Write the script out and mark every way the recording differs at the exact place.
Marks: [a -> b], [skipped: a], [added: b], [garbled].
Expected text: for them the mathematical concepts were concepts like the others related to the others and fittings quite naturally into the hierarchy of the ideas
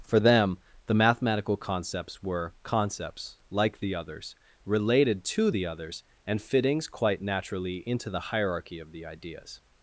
for them the mathematical concepts were concepts like the others related to the others and fittings quite naturally into the hierarchy of the ideas